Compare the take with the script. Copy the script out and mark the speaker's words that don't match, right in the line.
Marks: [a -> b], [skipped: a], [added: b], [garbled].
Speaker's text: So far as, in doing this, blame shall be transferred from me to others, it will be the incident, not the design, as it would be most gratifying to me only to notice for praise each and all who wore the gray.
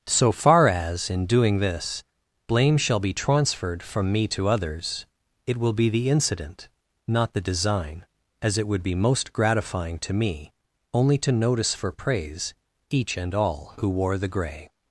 So far as, in doing this, blame shall be transferred from me to others, it will be the incident, not the design, as it would be most gratifying to me only to notice for praise each and all who wore the gray.